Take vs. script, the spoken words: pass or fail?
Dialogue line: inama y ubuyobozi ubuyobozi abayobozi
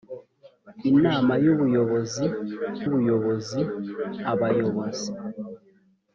pass